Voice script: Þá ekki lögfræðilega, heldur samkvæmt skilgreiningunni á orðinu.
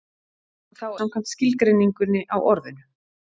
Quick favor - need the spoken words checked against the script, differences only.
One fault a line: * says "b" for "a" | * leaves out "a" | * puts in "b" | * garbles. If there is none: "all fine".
* leaves out "ekki lögfræðilega heldur"